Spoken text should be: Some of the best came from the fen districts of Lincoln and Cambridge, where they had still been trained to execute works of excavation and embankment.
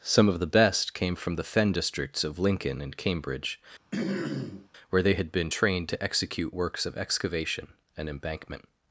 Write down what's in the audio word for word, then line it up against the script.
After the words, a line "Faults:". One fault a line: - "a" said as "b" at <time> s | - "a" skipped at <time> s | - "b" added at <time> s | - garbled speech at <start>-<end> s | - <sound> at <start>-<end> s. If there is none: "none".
Some of the best came from the fen districts of Lincoln and Cambridge, where they had been trained to execute works of excavation and embankment.
Faults:
- throat clearing at 3.9-4.7 s
- "still" skipped at 5.3 s